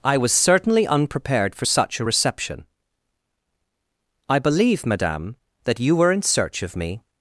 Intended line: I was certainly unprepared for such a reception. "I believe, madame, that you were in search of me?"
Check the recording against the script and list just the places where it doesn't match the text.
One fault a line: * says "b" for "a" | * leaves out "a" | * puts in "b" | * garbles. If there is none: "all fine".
all fine